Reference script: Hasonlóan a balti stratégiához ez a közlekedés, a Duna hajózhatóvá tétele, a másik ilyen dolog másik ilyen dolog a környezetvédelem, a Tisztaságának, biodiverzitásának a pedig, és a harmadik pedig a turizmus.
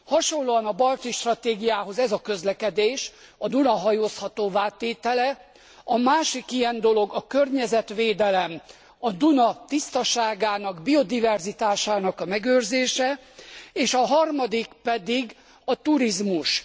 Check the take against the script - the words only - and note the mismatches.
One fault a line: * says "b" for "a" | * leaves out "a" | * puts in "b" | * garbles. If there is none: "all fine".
* leaves out "másik ilyen dolog"
* puts in "Duna"
* says "megőrzése" for "pedig"